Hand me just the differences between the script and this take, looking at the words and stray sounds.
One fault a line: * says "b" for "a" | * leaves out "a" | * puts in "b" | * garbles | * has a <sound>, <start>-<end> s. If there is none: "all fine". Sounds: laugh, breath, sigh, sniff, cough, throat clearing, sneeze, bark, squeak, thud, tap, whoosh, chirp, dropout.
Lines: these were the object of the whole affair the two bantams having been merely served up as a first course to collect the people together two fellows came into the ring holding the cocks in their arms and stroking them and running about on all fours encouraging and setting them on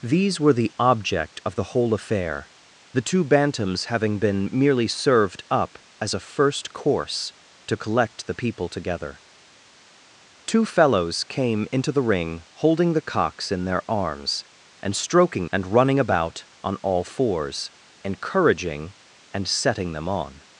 * leaves out "them"